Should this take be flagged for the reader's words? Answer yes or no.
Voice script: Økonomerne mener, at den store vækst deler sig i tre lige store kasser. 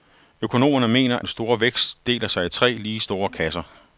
yes